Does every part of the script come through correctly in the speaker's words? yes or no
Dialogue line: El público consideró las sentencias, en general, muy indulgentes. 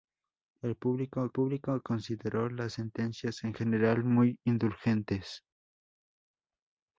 no